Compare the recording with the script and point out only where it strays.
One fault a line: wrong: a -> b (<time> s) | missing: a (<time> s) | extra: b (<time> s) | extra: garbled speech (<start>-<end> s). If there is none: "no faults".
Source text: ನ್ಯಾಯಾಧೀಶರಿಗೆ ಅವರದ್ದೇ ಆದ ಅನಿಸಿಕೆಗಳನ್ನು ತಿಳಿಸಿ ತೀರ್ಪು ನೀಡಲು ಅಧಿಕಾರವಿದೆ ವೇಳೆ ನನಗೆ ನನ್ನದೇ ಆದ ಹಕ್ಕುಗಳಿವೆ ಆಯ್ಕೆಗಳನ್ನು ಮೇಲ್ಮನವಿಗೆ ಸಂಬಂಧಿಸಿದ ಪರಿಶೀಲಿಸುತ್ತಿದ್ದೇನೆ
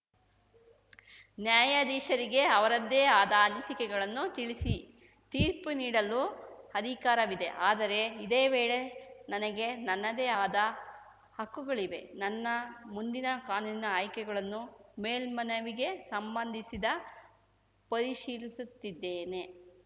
extra: ಆದರೆ ಇದೇ (7.6 s)
extra: ನನ್ನ ಮುಂದಿನ ಕಾನೂನಿನ (12.2 s)